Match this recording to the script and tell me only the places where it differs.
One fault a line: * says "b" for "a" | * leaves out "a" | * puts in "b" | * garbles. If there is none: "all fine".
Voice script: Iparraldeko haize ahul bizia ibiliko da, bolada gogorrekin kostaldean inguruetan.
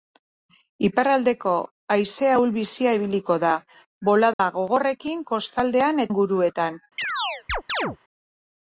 all fine